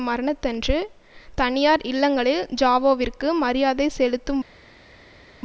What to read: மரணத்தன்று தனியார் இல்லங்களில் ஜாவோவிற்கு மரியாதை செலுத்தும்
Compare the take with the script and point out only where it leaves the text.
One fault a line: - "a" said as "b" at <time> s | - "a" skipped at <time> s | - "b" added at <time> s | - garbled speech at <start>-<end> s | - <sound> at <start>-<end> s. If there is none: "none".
none